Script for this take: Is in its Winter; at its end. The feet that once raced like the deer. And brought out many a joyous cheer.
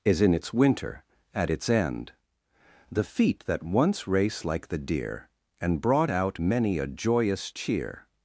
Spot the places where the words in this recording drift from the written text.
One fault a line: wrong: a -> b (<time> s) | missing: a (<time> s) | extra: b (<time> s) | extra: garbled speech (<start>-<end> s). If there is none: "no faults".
wrong: raced -> race (4.1 s)